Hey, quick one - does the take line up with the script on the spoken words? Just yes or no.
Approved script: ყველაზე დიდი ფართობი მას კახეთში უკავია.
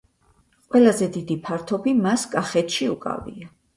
yes